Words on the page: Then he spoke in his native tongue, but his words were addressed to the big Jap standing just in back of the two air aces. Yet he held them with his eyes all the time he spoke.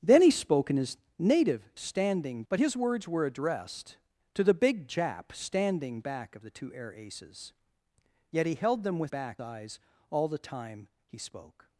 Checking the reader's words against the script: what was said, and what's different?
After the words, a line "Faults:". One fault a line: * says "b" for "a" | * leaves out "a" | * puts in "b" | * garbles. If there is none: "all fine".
Then he spoke in his native standing, but his words were addressed to the big Jap standing back of the two air aces. Yet he held them with back eyes all the time he spoke.
Faults:
* says "standing" for "tongue"
* leaves out "just in"
* says "back" for "his"